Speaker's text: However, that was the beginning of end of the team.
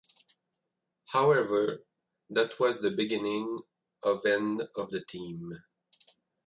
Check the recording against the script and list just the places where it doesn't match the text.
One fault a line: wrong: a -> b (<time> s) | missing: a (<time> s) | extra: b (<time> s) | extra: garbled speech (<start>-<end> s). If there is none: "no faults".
no faults